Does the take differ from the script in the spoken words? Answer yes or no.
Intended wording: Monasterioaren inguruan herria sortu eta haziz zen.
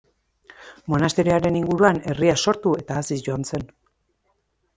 yes